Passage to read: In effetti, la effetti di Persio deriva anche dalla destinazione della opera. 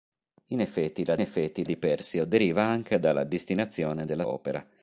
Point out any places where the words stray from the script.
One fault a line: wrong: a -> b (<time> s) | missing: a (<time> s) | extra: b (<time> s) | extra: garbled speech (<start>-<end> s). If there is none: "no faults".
no faults